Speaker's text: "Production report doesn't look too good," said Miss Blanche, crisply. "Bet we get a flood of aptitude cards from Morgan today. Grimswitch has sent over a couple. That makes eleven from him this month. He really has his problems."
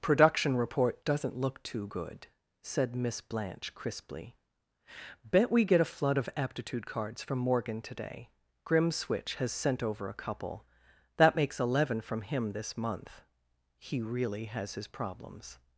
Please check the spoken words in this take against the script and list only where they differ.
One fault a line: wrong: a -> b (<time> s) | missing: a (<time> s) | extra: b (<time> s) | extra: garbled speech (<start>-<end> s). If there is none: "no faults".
no faults